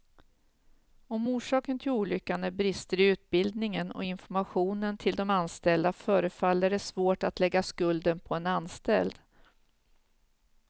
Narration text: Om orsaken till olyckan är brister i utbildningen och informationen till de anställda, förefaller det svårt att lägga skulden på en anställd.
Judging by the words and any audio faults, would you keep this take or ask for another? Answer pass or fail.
pass